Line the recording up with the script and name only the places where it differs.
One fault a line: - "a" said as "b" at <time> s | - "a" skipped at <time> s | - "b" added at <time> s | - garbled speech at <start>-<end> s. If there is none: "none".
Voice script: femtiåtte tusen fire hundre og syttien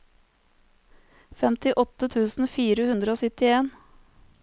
none